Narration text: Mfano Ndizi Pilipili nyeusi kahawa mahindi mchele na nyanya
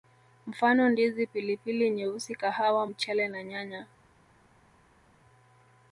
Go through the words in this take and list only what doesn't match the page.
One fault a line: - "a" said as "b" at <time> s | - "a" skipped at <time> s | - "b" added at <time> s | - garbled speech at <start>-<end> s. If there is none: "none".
- "mahindi" skipped at 2.9 s